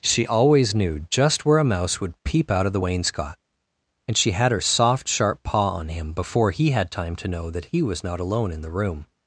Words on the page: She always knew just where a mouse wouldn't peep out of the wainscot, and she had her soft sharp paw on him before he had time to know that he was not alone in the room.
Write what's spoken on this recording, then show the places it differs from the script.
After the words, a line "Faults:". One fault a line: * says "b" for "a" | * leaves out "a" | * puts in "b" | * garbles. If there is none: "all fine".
She always knew just where a mouse would peep out of the wainscot, and she had her soft sharp paw on him before he had time to know that he was not alone in the room.
Faults:
* says "would" for "wouldn't"